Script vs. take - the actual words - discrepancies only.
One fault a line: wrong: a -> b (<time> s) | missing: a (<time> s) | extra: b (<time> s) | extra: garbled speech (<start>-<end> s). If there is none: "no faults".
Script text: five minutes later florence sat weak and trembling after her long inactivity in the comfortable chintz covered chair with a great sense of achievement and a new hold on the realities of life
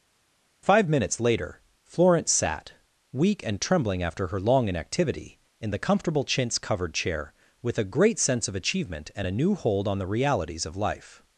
no faults